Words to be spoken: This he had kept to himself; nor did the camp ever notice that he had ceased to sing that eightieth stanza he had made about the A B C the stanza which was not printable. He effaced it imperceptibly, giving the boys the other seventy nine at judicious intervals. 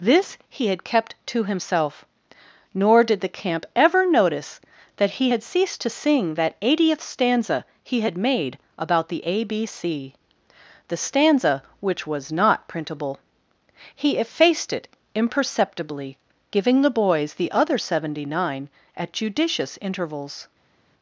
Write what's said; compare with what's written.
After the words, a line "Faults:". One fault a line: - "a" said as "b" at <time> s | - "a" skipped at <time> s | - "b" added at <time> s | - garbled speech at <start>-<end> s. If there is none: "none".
This he had kept to himself; nor did the camp ever notice that he had ceased to sing that eightieth stanza he had made about the A B C the stanza which was not printable. He effaced it imperceptibly, giving the boys the other seventy nine at judicious intervals.
Faults:
none